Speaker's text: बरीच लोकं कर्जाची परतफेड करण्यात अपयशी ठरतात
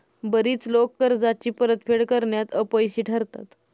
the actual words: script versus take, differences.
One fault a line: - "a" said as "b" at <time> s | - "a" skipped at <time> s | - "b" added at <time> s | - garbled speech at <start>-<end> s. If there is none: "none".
none